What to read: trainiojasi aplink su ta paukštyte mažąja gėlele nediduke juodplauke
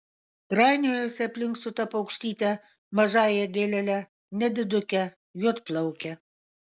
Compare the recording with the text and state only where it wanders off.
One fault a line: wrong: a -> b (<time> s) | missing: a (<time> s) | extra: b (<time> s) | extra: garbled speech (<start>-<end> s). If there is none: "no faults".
no faults